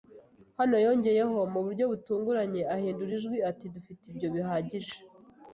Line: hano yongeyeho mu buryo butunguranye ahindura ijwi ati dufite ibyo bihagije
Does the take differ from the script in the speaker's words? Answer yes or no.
no